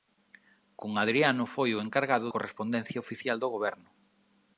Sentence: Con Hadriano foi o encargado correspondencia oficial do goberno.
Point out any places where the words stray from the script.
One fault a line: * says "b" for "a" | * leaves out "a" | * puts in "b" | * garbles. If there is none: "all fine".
all fine